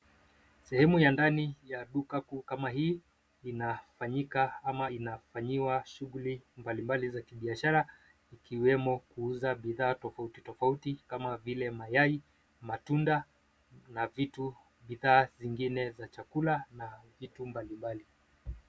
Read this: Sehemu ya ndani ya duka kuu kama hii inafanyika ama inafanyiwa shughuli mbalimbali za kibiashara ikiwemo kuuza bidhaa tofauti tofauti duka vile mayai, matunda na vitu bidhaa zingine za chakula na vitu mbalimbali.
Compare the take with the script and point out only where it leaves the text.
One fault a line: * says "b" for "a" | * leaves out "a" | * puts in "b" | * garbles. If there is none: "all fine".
* says "kama" for "duka"